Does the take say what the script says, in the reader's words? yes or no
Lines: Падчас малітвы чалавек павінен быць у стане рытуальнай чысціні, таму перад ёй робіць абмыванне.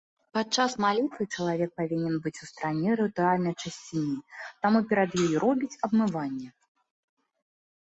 yes